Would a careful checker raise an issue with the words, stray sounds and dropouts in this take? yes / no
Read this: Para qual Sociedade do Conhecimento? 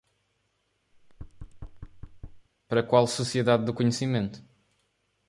yes